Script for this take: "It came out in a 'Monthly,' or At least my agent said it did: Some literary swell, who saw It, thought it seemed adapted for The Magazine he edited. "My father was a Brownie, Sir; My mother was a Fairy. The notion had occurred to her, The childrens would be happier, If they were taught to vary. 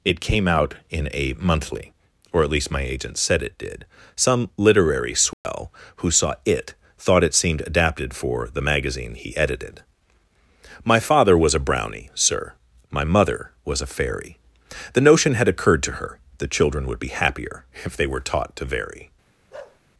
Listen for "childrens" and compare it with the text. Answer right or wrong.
wrong